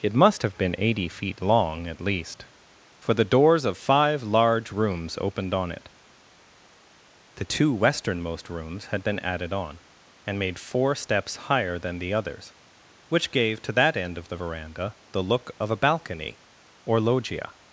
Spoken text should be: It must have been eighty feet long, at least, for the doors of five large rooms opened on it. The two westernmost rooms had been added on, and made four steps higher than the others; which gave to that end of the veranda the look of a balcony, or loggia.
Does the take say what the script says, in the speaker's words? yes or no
yes